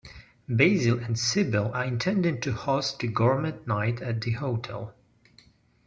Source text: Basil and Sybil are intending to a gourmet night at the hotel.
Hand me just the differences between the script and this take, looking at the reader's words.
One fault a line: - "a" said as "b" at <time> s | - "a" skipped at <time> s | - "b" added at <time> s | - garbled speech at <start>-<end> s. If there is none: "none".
- "host" added at 2.5 s